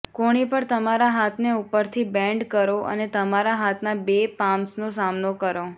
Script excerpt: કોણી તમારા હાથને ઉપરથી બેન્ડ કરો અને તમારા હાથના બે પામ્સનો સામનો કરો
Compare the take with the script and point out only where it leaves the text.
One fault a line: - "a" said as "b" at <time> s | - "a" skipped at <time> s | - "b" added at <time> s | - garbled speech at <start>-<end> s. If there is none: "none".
- "પર" added at 0.5 s